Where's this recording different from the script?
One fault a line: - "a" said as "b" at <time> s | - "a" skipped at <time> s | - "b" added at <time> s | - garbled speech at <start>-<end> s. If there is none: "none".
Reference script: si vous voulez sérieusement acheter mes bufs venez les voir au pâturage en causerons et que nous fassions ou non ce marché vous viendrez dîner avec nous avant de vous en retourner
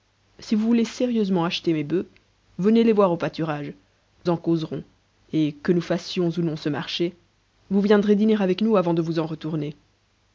none